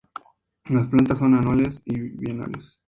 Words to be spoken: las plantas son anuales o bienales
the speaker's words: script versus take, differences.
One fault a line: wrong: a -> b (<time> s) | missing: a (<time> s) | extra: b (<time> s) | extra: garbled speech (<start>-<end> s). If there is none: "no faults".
no faults